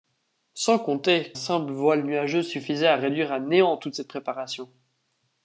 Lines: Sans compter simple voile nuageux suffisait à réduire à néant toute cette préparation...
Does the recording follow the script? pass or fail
pass